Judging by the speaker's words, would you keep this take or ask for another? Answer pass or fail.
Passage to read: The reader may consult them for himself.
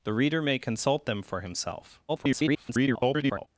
fail